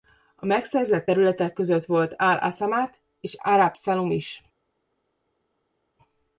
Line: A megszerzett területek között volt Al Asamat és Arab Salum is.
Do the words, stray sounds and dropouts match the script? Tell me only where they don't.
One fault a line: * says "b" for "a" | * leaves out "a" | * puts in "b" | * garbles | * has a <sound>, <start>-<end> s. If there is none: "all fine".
all fine